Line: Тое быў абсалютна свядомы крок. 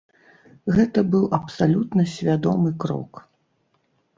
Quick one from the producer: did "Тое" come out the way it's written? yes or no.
no